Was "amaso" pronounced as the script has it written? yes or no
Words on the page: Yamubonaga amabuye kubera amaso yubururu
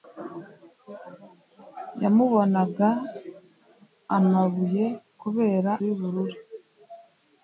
no